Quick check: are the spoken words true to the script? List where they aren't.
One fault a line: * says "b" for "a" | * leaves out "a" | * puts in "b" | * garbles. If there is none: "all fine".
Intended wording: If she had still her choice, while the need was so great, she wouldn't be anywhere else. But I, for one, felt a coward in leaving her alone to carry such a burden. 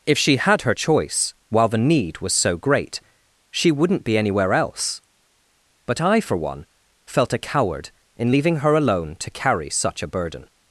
* leaves out "still"